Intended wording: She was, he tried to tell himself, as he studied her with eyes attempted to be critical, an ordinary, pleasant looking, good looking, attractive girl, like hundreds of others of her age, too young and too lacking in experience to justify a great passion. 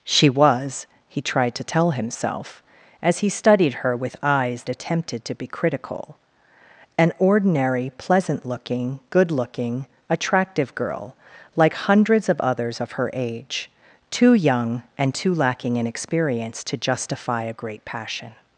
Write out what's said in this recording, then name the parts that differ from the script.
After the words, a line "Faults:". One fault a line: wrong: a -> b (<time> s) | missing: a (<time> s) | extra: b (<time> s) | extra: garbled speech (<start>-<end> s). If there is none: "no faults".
She was, he tried to tell himself, as he studied her with eyes attempted to be critical, an ordinary, pleasant looking, good looking, attractive girl, like hundreds of others of her age, too young and too lacking in experience to justify a great passion.
Faults:
no faults